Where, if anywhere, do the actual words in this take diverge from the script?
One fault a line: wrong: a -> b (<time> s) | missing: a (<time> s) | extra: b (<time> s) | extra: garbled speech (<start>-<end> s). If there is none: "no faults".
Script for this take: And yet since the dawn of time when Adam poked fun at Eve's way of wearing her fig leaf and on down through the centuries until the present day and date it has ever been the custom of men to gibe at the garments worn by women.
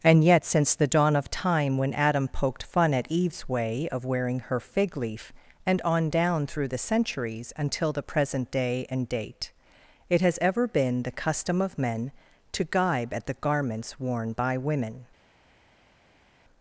no faults